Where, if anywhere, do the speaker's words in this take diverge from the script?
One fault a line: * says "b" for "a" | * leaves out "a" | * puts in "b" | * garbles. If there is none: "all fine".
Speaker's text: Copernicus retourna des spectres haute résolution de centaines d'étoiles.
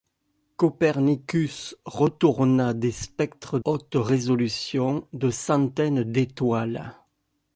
all fine